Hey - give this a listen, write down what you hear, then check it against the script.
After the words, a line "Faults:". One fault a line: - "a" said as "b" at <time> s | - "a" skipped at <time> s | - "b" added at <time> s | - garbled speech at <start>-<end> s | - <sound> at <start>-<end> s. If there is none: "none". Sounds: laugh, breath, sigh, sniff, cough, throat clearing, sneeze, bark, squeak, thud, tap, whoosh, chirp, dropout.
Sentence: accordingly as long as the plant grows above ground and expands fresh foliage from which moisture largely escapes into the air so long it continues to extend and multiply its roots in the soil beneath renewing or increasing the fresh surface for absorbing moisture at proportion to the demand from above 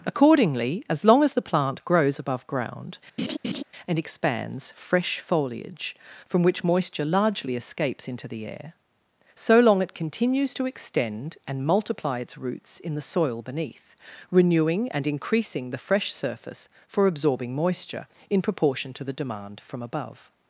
accordingly as long as the plant grows above ground and expands fresh foliage from which moisture largely escapes into the air so long it continues to extend and multiply its roots in the soil beneath renewing and increasing the fresh surface for absorbing moisture in proportion to the demand from above
Faults:
- laugh at 3.2-3.6 s
- "or" said as "and" at 14.9 s
- "at" said as "in" at 18.3 s